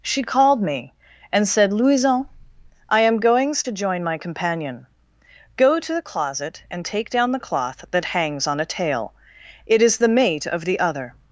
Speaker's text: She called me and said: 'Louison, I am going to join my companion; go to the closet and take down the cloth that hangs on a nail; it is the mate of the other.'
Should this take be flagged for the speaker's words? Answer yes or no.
yes